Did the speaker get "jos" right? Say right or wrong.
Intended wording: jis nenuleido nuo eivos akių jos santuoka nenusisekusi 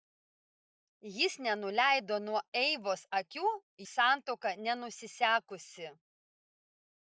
wrong